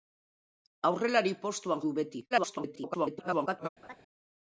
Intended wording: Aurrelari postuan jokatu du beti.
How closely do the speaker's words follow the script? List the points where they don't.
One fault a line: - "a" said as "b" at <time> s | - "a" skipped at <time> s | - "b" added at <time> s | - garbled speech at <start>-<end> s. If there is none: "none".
- "jokatu" skipped at 1.8 s
- garbled speech at 2.3-3.7 s